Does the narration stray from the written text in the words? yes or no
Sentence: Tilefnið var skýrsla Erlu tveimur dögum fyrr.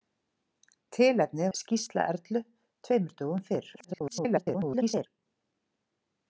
yes